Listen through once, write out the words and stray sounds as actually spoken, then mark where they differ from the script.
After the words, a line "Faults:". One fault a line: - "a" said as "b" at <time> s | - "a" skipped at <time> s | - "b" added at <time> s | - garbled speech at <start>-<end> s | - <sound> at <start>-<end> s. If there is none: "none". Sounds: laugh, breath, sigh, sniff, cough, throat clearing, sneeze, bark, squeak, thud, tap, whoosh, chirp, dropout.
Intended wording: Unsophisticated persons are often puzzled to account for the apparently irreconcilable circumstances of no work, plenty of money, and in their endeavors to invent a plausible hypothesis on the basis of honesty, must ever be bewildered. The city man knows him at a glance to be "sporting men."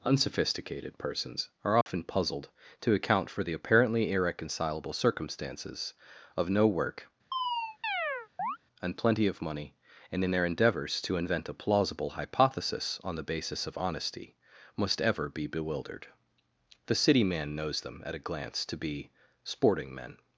Unsophisticated persons are often puzzled to account for the apparently irreconcilable circumstances of no work, and plenty of money, and in their endeavors to invent a plausible hypothesis on the basis of honesty, must ever be bewildered. The city man knows them at a glance to be "sporting men."
Faults:
- dropout at 1.8-1.9 s
- chirp at 7.3-8.6 s
- "and" added at 8.8 s
- "him" said as "them" at 17.8 s